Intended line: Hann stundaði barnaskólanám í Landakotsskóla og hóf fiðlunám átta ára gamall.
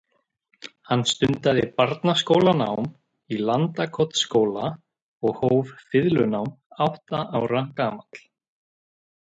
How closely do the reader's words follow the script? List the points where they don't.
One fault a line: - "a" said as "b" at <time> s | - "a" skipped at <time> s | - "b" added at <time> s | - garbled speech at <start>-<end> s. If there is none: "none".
none